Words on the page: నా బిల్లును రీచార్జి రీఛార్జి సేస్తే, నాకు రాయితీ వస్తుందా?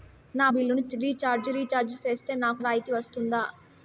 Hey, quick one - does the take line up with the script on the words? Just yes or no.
yes